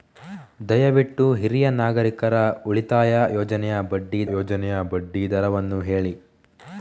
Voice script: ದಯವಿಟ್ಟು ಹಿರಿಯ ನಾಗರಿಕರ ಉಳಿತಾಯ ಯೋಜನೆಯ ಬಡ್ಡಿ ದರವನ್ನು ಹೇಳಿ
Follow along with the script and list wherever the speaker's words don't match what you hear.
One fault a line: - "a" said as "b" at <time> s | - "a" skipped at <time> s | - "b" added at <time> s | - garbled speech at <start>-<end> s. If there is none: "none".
- "ಯೋಜನೆಯ ಬಡ್ಡಿ" added at 4.4 s